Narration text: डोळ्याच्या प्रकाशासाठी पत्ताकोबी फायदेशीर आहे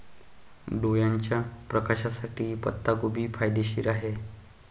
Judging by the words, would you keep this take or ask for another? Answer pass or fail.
pass